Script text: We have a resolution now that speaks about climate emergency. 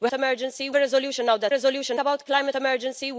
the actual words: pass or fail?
fail